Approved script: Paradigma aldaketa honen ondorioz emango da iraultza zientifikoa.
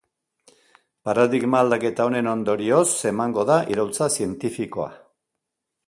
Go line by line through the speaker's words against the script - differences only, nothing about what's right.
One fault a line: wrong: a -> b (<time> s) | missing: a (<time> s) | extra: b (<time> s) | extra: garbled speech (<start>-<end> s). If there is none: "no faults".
no faults